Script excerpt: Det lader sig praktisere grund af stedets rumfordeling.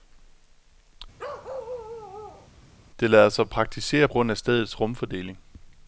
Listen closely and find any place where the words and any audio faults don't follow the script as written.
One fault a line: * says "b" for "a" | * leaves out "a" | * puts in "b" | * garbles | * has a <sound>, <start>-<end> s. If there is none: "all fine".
* has a bark, 1.2-2.5 s